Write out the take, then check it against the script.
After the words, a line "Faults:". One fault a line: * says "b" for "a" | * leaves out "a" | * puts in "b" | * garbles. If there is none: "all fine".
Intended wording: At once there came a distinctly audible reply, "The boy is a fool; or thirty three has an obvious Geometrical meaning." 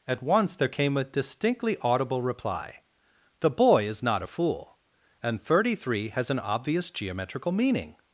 At once there came a distinctly audible reply, "The boy is not a fool; and thirty three has an obvious Geometrical meaning."
Faults:
* puts in "not"
* says "and" for "or"